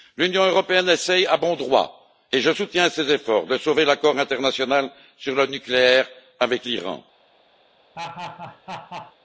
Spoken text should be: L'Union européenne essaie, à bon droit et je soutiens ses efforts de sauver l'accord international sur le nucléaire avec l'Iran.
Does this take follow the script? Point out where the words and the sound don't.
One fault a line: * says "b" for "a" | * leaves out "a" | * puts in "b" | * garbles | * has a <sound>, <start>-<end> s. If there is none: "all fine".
* has a laugh, 7.9-9.2 s